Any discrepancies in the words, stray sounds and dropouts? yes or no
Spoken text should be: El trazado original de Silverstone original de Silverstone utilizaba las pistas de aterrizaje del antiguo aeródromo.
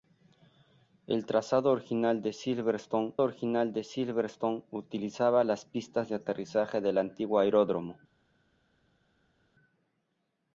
no